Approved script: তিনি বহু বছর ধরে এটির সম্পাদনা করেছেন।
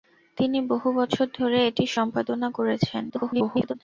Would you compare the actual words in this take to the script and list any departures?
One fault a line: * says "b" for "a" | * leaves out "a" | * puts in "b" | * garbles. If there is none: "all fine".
* garbles